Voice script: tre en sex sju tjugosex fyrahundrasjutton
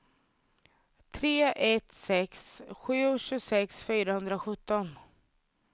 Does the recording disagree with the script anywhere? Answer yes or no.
yes